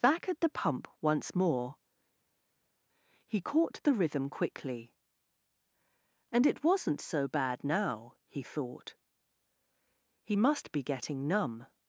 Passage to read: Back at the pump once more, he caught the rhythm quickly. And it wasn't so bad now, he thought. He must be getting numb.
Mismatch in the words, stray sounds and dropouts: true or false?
false